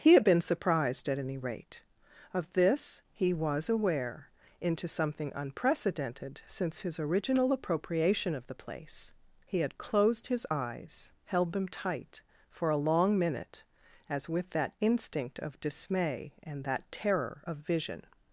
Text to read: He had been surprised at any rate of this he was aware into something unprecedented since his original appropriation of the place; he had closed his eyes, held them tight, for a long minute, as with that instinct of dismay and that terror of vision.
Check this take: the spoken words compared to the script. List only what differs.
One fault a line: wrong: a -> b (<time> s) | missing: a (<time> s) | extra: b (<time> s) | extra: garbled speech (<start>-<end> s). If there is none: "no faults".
no faults